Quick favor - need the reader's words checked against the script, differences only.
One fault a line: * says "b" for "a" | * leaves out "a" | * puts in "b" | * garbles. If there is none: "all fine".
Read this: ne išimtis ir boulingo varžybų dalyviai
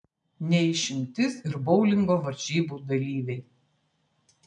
all fine